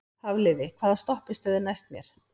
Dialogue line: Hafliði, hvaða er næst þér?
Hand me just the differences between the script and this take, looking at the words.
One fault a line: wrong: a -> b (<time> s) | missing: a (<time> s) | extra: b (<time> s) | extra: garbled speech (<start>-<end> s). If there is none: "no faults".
extra: stoppistöð (1.0 s)
wrong: þér -> mér (2.0 s)